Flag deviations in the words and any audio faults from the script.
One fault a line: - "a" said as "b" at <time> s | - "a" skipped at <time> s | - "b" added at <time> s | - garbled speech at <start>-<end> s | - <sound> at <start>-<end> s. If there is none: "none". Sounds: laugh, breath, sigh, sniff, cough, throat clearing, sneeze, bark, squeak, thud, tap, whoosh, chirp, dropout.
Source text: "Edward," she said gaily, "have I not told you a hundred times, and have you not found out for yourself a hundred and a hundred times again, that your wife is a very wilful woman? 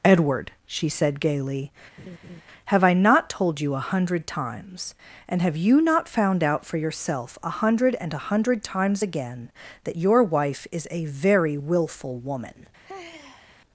- laugh at 2.0-2.4 s
- sigh at 12.8-13.6 s